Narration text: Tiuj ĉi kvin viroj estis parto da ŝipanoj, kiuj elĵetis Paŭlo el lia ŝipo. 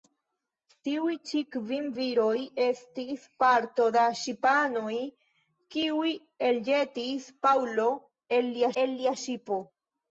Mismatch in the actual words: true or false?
true